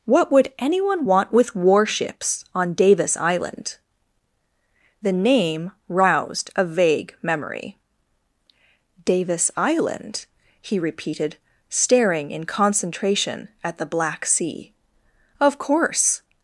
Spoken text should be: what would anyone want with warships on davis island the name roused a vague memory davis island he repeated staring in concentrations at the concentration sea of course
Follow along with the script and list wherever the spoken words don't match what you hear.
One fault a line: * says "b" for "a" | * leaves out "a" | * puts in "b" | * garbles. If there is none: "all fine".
* says "concentration" for "concentrations"
* says "black" for "concentration"